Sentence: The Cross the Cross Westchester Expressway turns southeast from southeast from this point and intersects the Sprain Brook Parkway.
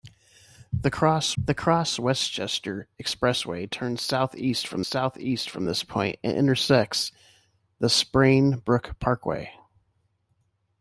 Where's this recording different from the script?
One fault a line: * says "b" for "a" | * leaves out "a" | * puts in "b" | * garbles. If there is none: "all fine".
all fine